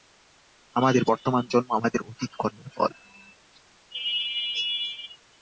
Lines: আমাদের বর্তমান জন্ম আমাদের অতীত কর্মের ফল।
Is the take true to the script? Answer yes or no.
yes